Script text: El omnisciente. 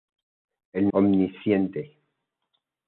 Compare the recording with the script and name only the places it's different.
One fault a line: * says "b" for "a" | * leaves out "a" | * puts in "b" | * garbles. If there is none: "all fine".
all fine